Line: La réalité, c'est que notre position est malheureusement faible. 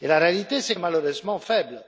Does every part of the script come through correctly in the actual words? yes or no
no